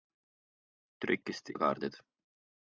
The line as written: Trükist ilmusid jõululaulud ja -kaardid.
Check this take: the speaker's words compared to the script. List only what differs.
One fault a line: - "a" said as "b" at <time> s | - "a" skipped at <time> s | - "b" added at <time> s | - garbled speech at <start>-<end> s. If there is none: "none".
- "ilmusid jõululaulud" skipped at 1.5 s